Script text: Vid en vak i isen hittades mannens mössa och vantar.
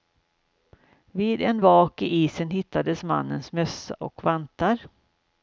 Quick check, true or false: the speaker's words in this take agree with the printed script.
true